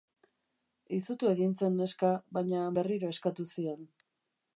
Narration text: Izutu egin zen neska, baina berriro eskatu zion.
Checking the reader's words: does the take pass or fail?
pass